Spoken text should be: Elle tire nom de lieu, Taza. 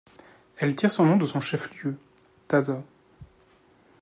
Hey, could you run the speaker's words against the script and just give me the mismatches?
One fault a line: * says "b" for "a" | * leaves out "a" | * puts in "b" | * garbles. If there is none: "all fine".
* puts in "son"
* puts in "son chef"